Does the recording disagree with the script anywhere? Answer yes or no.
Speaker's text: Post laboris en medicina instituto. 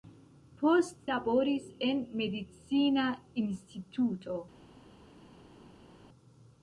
no